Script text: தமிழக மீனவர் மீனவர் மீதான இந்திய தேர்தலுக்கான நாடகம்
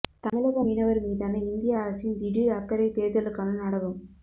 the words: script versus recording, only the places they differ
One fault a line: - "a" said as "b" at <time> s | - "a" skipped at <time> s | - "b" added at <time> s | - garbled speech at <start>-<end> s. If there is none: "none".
- "மீனவர்" skipped at 1.0 s
- "அரசின் திடீர் அக்கறை" added at 1.8 s